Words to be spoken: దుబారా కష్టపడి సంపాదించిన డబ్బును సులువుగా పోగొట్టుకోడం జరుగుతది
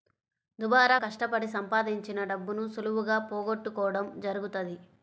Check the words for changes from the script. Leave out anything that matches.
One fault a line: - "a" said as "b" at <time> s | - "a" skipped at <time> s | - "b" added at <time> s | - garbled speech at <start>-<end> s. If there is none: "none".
none